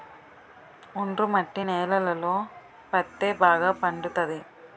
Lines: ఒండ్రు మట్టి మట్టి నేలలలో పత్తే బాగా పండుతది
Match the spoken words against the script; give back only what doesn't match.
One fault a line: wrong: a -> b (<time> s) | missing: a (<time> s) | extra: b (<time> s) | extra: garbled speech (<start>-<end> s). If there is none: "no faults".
missing: మట్టి (1.6 s)